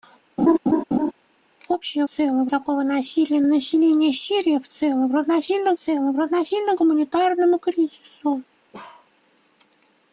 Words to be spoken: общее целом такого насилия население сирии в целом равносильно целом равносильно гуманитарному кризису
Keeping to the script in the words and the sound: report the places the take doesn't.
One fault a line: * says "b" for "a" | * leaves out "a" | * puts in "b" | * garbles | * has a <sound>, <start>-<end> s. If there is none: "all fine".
* has a laugh, 0.4-1.1 s
* has a bark, 8.7-9.1 s